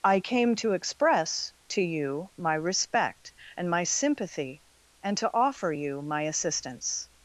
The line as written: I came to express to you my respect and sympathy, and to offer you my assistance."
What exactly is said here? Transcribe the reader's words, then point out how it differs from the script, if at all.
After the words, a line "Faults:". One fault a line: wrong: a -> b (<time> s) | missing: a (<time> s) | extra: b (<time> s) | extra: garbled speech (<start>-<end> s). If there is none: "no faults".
I came to express to you my respect and my sympathy, and to offer you my assistance."
Faults:
extra: my (3.7 s)